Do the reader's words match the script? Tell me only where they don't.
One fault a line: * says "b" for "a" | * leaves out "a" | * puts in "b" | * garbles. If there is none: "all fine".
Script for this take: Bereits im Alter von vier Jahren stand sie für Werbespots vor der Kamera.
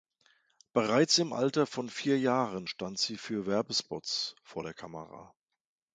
all fine